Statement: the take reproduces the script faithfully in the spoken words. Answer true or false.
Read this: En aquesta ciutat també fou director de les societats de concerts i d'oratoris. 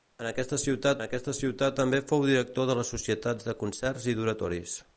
false